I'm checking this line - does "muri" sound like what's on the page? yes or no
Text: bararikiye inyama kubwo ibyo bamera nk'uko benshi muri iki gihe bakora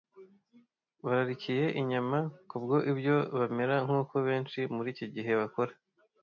yes